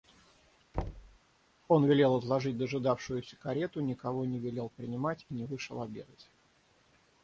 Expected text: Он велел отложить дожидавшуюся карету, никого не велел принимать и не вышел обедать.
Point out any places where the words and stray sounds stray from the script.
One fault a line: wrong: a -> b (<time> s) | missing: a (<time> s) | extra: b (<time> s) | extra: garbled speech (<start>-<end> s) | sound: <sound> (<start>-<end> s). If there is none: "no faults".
sound: thud (0.7-1.2 s)